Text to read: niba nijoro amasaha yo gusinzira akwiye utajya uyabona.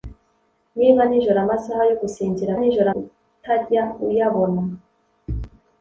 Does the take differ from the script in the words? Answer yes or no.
yes